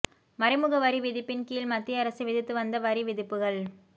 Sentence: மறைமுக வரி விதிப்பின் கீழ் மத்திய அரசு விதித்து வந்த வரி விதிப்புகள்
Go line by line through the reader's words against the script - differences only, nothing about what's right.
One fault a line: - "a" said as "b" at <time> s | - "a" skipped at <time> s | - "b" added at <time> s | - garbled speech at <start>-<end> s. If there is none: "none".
none